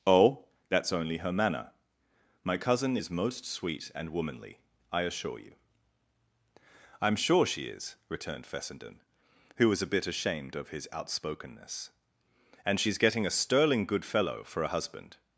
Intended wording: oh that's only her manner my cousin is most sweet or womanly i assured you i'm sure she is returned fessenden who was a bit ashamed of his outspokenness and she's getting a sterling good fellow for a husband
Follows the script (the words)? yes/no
no